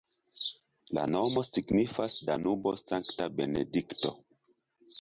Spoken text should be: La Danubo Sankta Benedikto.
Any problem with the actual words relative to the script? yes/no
yes